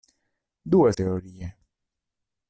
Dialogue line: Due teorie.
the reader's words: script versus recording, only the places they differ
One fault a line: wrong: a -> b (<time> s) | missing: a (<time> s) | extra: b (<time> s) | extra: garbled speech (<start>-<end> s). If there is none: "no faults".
no faults